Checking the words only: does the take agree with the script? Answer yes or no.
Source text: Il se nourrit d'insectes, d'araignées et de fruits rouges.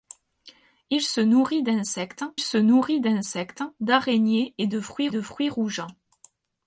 no